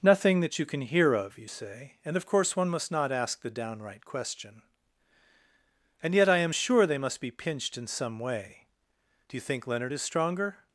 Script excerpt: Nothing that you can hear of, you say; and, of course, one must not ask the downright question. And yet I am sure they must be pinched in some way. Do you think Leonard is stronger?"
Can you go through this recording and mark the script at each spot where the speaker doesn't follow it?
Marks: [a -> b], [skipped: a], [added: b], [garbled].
Nothing that you can hear of, you say; and, of course, one must not ask the downright question. And yet I am sure they must be pinched in some way. Do you think Leonard is stronger?"